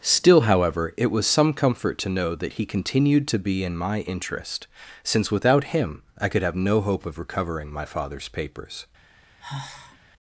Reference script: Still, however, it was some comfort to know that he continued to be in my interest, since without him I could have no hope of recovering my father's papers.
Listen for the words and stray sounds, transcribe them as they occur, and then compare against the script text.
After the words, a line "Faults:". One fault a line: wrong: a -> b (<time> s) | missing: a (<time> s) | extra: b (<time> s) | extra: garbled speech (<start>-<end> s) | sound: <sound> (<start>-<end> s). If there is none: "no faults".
Still, however, it was some comfort to know that he continued to be in my interest, since without him I could have no hope of recovering my father's papers.
Faults:
sound: sigh (9.4-10.0 s)